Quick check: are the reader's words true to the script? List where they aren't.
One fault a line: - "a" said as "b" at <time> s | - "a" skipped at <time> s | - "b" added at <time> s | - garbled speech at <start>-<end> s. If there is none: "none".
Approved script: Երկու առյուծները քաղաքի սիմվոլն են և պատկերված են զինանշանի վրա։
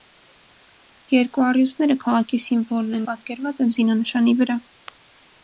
- "և" skipped at 3.0 s